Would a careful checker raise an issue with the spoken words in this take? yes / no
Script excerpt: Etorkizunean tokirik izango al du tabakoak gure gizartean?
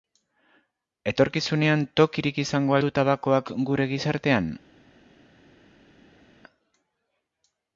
yes